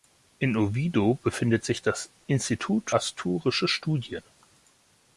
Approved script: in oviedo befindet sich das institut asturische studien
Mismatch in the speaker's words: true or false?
false